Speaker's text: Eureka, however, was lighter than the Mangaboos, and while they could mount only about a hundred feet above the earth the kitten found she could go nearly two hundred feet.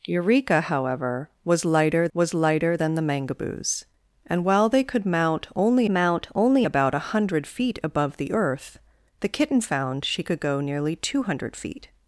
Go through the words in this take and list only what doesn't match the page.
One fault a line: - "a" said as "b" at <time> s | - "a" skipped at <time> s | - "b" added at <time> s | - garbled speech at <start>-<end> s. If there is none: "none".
- "was lighter" added at 2.1 s
- "mount only" added at 5.9 s